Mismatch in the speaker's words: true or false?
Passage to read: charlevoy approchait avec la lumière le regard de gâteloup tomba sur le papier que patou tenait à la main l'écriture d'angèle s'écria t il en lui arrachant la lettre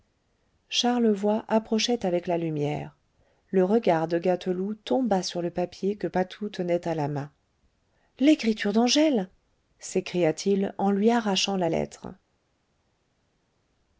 false